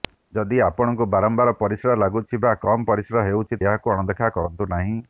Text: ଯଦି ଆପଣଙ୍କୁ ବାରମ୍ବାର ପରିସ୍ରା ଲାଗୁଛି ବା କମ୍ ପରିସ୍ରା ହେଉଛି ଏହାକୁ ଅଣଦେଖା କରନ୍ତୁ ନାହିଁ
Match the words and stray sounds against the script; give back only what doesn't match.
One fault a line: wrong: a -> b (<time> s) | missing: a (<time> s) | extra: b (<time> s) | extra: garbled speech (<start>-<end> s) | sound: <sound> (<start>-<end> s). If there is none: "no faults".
no faults